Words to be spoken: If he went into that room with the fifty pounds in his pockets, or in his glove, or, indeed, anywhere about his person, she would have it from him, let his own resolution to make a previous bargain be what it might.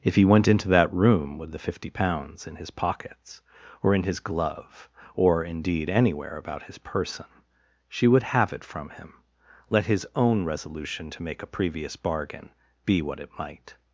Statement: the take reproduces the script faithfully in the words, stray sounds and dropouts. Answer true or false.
true